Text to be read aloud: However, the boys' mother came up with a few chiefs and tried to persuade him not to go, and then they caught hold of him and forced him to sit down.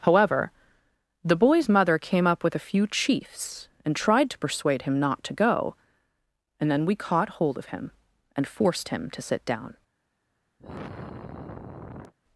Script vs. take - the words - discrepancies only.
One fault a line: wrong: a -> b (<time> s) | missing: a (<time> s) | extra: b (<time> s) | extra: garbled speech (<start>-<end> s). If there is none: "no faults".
wrong: they -> we (6.8 s)